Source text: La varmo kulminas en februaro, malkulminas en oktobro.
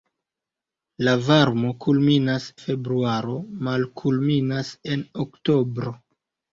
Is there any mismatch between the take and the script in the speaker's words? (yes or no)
yes